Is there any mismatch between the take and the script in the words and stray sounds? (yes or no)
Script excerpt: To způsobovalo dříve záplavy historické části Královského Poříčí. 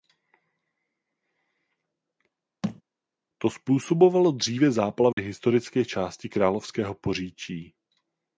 yes